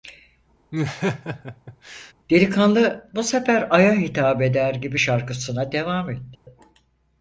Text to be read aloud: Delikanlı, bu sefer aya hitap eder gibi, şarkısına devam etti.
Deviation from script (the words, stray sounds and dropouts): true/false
true